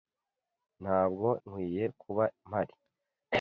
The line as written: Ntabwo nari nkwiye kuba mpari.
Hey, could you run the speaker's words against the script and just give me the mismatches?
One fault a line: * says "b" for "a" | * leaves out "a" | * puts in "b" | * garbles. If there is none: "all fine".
* leaves out "nari"